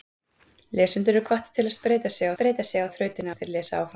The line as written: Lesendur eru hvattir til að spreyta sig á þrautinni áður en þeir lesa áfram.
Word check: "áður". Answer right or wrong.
wrong